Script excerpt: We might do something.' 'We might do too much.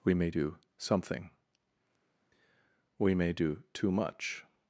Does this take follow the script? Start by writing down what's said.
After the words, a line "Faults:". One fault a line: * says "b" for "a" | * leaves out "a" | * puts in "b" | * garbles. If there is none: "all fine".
We may do something.' 'We may do too much.
Faults:
* says "may" for "might"
* says "may" for "might"